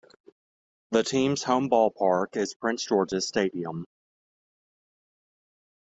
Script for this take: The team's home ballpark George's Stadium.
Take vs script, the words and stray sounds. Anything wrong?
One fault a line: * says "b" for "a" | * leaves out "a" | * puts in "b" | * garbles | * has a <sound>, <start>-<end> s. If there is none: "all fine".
* puts in "is Prince"